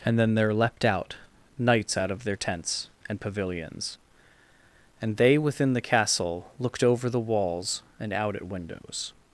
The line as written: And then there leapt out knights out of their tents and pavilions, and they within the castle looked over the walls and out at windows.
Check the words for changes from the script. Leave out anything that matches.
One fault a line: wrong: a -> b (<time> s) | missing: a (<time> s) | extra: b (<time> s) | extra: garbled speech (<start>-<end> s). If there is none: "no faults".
no faults